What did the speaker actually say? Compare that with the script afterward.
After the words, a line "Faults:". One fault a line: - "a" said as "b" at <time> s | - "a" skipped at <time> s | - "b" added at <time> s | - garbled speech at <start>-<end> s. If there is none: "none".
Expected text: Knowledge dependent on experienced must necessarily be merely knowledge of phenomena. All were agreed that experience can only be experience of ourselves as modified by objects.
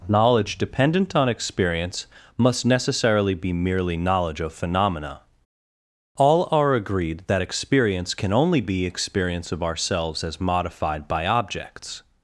Knowledge dependent on experience must necessarily be merely knowledge of phenomena. All are agreed that experience can only be experience of ourselves as modified by objects.
Faults:
- "experienced" said as "experience" at 1.3 s
- "were" said as "are" at 6.5 s